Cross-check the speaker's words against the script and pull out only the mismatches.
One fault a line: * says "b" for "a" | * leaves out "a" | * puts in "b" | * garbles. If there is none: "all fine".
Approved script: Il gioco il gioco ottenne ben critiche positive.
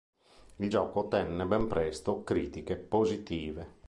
* leaves out "il gioco"
* puts in "presto"